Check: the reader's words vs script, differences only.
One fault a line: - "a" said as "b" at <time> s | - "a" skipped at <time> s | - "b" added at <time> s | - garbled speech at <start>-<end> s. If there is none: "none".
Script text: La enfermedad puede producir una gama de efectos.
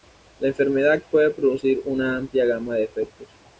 - "amplia" added at 2.2 s